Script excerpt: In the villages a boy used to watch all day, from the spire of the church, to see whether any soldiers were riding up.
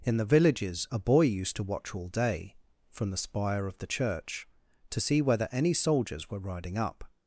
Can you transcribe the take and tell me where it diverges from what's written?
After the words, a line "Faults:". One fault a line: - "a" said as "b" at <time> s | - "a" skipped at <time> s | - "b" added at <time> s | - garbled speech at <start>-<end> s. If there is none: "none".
In the villages a boy used to watch all day, from the spire of the church, to see whether any soldiers were riding up.
Faults:
none